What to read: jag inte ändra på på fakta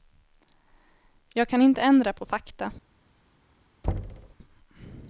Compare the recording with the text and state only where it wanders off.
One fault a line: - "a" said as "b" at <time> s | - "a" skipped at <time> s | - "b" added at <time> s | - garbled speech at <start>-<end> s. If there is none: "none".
- "kan" added at 1.5 s
- "på" skipped at 2.2 s